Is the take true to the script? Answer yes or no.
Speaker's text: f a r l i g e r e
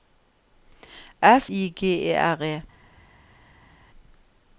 no